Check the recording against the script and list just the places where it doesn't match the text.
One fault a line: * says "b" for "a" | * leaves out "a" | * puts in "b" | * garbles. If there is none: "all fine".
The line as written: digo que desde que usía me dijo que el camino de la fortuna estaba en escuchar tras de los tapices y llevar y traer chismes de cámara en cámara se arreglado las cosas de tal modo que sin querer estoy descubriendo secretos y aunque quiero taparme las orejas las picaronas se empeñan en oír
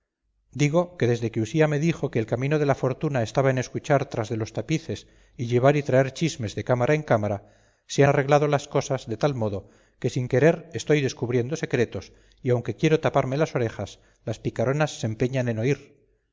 all fine